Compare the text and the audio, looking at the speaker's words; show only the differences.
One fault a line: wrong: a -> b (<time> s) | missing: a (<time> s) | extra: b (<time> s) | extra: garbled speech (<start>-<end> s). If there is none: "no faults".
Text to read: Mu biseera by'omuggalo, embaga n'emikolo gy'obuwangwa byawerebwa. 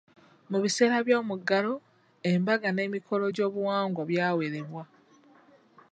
no faults